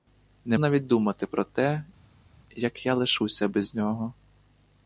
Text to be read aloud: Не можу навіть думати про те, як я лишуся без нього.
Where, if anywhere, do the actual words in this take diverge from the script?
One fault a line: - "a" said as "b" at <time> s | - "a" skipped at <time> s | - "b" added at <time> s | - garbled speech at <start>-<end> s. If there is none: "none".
- "можу" skipped at 0.6 s